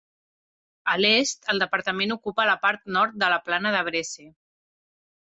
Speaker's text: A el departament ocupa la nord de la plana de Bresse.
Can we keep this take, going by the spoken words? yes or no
no